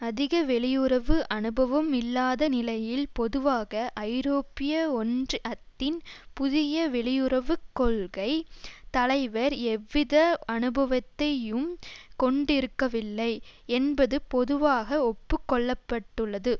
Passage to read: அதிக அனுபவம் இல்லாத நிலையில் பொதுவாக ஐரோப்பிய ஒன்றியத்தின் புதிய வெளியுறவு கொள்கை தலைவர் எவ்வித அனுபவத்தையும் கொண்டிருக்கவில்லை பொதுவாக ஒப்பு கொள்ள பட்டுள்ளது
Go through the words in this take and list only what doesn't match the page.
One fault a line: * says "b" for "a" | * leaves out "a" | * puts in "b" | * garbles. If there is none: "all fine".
* puts in "வெளியுறவு"
* puts in "என்பது"